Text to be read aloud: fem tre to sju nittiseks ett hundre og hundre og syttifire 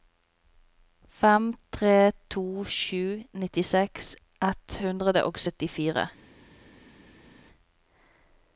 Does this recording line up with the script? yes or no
no